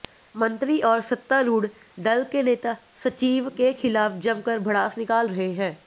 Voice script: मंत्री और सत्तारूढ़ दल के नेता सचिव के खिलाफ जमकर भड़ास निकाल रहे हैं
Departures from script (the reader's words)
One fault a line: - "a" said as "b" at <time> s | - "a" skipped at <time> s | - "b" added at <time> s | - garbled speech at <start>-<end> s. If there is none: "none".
none